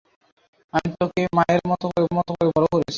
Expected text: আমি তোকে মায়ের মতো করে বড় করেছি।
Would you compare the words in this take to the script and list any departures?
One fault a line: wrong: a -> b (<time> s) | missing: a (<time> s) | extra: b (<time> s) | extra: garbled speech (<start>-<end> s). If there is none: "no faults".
extra: মতো করে (2.1 s)